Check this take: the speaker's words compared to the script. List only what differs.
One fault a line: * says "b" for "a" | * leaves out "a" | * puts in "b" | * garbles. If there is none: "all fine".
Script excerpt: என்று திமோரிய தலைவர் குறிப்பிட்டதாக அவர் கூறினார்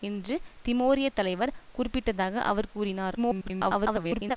* garbles